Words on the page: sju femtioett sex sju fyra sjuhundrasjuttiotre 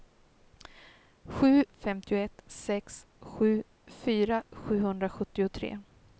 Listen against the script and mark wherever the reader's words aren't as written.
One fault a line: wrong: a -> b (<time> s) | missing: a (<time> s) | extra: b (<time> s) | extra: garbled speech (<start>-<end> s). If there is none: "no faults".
no faults